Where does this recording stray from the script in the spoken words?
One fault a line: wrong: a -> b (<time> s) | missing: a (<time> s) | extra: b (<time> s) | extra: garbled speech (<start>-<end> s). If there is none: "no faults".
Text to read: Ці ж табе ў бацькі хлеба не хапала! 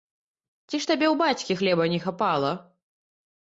no faults